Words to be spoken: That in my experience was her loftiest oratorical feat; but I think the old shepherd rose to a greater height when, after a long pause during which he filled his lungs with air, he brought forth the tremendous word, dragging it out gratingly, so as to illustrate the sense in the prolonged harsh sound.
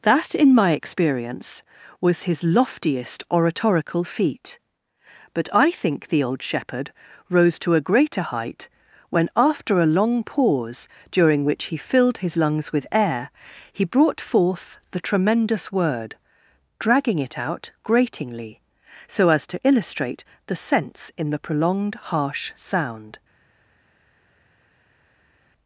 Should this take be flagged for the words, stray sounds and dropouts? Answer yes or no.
yes